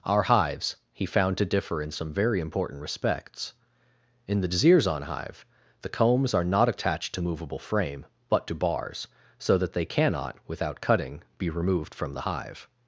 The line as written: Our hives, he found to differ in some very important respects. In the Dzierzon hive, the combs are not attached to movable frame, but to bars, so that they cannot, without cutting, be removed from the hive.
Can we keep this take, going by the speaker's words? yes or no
yes